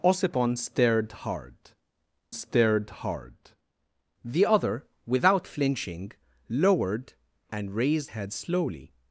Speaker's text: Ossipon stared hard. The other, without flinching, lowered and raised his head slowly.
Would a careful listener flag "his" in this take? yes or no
yes